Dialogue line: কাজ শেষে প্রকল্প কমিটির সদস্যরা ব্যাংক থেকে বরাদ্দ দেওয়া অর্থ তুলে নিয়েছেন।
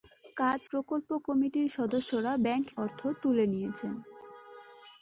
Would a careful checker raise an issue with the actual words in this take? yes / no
yes